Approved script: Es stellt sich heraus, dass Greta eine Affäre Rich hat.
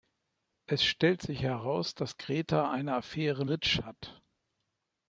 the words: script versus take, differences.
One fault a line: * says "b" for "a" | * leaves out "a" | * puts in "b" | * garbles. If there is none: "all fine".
all fine